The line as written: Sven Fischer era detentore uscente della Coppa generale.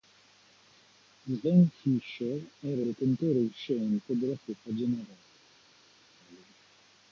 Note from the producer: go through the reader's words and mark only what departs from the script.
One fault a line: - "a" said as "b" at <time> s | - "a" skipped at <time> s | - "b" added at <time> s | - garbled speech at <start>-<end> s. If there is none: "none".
none